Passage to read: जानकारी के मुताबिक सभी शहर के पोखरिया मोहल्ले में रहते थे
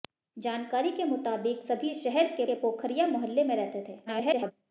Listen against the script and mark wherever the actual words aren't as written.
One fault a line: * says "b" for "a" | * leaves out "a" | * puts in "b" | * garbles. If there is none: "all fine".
* puts in "के"
* garbles